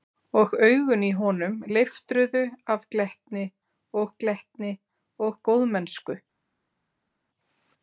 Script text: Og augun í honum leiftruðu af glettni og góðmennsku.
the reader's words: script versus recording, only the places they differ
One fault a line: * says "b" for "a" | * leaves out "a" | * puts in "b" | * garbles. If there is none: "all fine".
* puts in "glettni og"